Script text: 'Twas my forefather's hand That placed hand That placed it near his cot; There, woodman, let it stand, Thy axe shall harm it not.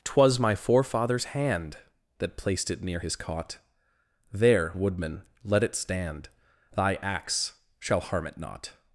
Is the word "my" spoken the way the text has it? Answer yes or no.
yes